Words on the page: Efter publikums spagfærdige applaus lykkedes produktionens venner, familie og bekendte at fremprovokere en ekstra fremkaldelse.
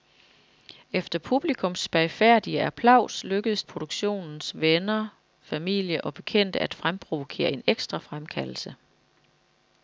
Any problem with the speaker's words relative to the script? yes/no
no